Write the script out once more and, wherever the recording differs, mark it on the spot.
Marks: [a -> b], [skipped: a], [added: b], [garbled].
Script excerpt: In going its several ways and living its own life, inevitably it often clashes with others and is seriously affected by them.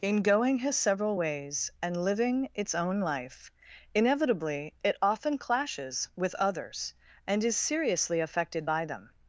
In going [its -> his] several ways and living its own life, inevitably it often clashes with others and is seriously affected by them.